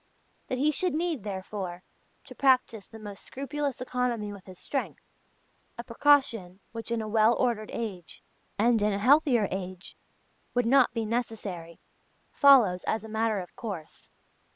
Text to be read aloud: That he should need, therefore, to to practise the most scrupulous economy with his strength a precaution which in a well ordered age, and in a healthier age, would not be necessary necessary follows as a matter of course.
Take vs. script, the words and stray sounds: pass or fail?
fail